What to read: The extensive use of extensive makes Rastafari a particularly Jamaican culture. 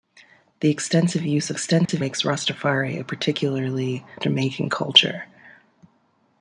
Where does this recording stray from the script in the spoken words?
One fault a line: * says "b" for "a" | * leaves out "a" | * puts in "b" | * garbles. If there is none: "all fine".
all fine